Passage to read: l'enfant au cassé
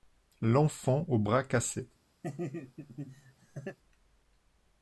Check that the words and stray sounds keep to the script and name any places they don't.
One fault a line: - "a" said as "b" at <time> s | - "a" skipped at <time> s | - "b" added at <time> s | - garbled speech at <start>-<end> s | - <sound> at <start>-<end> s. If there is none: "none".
- "bras" added at 1.2 s
- laugh at 2.2-3.8 s